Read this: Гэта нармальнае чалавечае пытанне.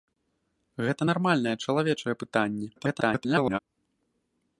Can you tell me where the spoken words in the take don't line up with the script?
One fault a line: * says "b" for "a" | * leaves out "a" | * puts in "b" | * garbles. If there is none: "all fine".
* garbles